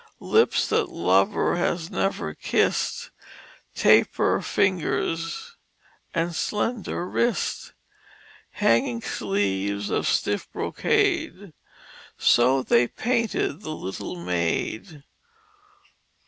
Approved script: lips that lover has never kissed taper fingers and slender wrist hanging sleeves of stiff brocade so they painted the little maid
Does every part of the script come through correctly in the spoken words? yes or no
yes